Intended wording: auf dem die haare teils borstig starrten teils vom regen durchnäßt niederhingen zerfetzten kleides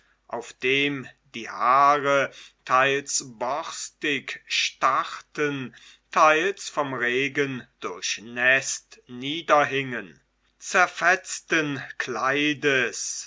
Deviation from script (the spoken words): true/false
false